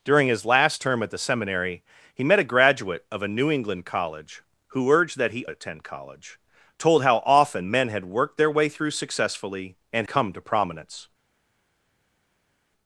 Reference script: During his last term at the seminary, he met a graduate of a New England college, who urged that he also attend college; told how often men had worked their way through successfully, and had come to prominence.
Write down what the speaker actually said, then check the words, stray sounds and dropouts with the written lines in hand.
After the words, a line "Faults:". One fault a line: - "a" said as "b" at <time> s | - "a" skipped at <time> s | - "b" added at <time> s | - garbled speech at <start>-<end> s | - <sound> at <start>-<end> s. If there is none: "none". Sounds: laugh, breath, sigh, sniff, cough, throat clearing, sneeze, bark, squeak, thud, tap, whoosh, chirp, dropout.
During his last term at the seminary, he met a graduate of a New England college, who urged that he attend college; told how often men had worked their way through successfully, and come to prominence.
Faults:
- "also" skipped at 5.5 s
- "had" skipped at 10.1 s